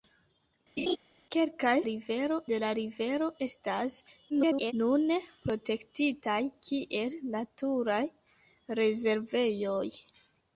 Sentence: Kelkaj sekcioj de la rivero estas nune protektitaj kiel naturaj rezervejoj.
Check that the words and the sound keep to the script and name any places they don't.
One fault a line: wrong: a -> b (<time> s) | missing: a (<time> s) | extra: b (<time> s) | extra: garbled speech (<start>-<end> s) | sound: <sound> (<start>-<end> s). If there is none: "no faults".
sound: laugh (0.8-1.0 s)
wrong: sekcioj -> rivero (1.9 s)
extra: garbled speech (4.3-4.7 s)